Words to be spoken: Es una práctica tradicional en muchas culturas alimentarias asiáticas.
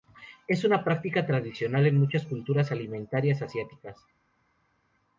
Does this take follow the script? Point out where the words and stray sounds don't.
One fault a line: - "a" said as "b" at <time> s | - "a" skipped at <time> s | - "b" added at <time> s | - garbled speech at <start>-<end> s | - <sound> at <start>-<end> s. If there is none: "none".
none